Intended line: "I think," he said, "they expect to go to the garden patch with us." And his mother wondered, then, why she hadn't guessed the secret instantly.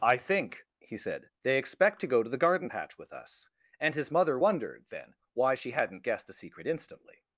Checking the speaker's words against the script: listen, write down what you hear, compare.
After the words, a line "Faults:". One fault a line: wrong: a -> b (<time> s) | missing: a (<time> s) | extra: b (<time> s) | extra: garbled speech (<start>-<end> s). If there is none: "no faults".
"I think," he said, "they expect to go to the garden patch with us." And his mother wondered, then, why she hadn't guessed the secret instantly.
Faults:
no faults